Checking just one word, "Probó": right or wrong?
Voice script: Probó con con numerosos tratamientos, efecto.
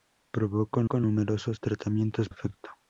right